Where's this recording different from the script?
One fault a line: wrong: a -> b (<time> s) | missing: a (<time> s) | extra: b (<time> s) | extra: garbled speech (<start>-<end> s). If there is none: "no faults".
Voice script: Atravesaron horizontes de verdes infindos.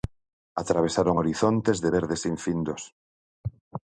no faults